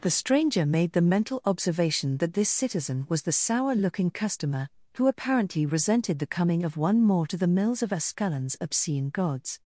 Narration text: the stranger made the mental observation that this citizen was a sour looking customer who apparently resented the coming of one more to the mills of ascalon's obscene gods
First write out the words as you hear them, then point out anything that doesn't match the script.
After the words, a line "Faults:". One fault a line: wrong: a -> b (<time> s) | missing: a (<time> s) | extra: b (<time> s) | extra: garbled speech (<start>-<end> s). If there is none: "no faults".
the stranger made the mental observation that this citizen was the sour looking customer who apparently resented the coming of one more to the mills of ascalon's obscene gods
Faults:
wrong: a -> the (3.2 s)